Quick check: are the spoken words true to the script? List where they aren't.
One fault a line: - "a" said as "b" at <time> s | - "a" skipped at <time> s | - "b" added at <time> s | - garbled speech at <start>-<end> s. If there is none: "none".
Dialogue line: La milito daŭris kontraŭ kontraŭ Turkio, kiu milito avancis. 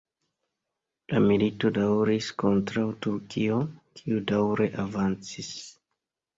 - "kontraŭ" skipped at 2.9 s
- "milito" said as "daŭre" at 4.3 s